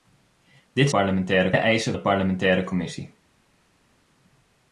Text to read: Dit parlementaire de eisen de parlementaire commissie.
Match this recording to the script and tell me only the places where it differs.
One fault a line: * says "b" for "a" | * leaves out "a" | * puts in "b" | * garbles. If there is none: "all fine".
all fine